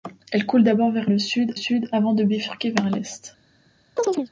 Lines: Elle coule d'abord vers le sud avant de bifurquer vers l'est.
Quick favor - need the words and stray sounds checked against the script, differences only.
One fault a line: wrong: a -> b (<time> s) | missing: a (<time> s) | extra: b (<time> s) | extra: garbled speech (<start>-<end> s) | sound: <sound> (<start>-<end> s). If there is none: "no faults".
extra: sud (1.5 s)
sound: chirp (4.0-4.3 s)